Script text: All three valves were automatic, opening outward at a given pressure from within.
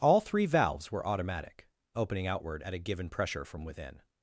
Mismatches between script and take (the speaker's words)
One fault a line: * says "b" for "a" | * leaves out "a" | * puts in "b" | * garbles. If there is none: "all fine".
all fine